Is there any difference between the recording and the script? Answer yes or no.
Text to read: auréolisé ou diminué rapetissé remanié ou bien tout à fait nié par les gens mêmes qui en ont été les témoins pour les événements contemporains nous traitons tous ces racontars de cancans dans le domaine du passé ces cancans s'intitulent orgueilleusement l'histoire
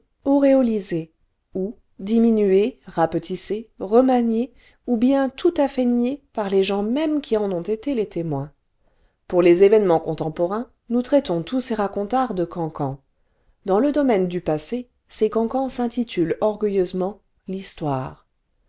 no